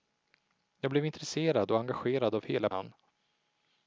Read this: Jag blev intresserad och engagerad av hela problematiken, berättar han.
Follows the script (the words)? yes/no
no